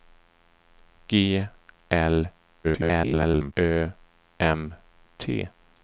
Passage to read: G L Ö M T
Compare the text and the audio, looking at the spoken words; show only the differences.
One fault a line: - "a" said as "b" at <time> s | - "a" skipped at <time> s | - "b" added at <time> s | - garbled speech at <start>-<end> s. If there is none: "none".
- garbled speech at 2.6-3.5 s